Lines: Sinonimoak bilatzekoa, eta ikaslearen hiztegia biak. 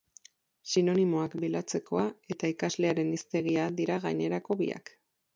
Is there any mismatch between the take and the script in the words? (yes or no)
yes